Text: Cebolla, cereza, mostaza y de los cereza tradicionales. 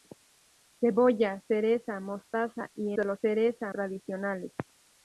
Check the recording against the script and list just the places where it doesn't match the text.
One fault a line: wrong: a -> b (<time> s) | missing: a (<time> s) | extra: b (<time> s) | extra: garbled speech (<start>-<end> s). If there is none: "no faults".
no faults